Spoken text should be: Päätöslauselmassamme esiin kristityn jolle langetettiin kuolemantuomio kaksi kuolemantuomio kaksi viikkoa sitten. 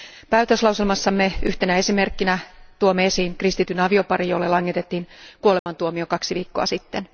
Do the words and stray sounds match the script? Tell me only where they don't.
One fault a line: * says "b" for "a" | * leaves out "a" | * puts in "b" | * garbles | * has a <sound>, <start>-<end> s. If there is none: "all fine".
* puts in "yhtenä esimerkkinä tuomme"
* puts in "avioparin"
* has a dropout, 5.6-5.7 s
* leaves out "kuolemantuomio kaksi"